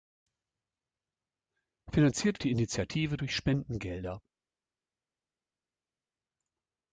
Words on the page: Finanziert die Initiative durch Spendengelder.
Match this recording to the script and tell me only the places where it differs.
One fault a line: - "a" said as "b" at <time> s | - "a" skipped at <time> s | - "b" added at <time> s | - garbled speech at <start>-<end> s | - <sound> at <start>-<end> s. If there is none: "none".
none